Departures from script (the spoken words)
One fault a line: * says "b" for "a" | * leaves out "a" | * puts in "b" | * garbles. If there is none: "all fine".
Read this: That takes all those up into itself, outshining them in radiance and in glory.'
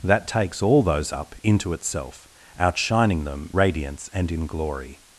* leaves out "in"